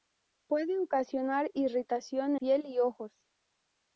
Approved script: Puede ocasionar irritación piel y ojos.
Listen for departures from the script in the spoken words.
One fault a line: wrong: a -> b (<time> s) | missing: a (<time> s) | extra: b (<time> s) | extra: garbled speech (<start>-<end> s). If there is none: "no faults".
no faults